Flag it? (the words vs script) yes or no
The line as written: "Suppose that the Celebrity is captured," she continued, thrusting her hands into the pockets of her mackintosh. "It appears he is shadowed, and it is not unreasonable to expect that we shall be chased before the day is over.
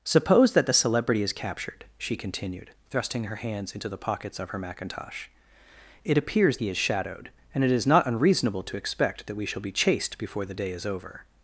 no